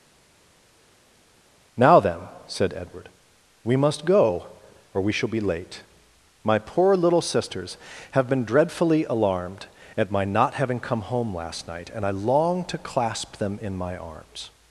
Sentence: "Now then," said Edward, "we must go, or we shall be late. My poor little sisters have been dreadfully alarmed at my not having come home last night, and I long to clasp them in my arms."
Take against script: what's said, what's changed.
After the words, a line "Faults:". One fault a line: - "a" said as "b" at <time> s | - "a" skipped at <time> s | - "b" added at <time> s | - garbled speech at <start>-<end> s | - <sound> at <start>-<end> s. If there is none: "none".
"Now then," said Edward, "we must go, or we shall be late. My poor little sisters have been dreadfully alarmed at my not having come home last night, and I long to clasp them in my arms."
Faults:
none